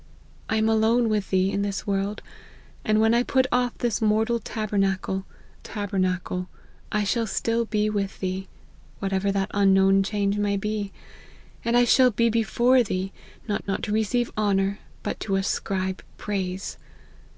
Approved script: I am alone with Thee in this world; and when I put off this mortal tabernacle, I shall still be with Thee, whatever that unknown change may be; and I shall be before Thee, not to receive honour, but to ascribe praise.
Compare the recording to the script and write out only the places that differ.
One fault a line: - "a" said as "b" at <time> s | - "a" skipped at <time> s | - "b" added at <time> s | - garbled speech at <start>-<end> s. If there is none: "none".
- "tabernacle" added at 5.6 s
- "not" added at 13.7 s